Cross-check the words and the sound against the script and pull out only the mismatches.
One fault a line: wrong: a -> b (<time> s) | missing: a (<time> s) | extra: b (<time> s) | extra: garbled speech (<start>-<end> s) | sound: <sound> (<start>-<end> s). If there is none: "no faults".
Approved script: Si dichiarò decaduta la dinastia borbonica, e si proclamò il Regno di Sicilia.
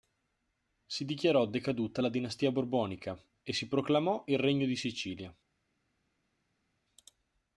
no faults